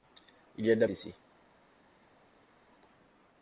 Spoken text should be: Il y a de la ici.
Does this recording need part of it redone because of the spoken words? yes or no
no